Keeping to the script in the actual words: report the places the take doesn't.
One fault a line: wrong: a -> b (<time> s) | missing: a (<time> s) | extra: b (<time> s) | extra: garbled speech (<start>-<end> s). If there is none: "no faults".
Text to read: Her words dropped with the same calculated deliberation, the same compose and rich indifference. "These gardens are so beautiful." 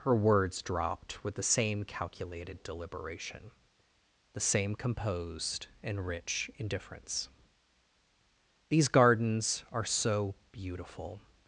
wrong: compose -> composed (4.7 s)